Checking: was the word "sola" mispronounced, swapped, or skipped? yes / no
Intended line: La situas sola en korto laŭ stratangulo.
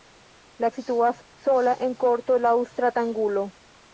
no